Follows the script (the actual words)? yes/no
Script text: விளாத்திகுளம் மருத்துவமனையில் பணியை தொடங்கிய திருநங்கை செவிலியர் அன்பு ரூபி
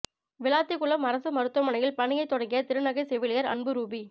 no